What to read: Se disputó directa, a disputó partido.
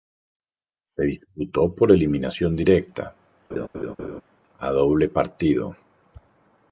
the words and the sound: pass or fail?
fail